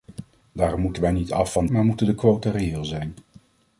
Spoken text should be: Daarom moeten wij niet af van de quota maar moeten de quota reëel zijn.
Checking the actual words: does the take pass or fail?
fail